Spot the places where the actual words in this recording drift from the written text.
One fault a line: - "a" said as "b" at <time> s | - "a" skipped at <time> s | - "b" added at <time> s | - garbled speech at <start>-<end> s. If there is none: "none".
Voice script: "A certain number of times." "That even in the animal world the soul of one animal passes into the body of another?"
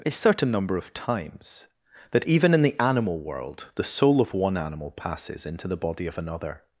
none